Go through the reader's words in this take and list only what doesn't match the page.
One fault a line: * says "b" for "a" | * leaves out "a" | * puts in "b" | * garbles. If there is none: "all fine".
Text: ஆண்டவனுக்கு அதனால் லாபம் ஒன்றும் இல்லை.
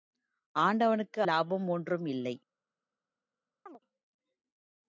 * leaves out "அதனால்"